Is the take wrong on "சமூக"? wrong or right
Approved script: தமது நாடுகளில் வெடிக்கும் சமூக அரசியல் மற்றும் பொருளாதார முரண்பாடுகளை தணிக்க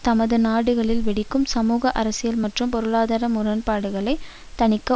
right